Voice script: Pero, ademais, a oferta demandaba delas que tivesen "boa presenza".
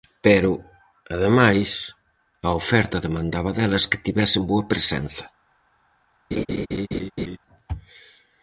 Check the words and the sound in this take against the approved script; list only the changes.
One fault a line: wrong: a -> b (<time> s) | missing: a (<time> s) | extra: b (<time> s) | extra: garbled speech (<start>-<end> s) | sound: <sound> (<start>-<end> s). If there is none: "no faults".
sound: laugh (6.3-7.4 s)